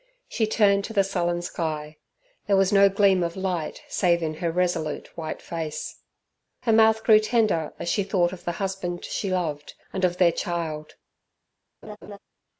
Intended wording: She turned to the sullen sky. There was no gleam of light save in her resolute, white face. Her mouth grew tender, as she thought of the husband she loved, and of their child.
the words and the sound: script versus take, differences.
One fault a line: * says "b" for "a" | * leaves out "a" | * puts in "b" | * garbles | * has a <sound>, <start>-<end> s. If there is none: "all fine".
* has a laugh, 11.8-12.2 s